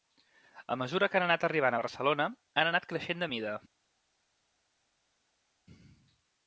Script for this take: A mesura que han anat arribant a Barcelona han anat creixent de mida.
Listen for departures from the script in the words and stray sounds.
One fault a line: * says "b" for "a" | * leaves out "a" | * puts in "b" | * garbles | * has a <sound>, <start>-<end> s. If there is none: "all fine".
all fine